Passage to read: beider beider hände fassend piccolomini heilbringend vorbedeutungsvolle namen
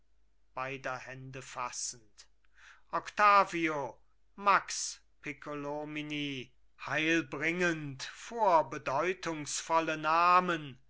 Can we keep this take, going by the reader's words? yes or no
no